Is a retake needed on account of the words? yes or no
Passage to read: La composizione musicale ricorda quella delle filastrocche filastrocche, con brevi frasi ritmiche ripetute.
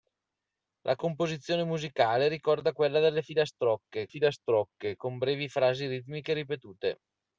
no